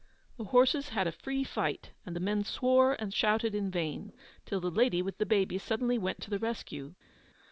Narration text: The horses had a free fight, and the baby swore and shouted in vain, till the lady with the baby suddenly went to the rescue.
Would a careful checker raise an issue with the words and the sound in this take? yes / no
yes